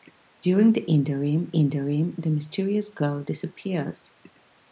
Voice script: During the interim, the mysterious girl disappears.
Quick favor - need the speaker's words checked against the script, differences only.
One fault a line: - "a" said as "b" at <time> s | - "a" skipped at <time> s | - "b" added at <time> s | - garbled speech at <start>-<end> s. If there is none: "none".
- "interim" added at 1.5 s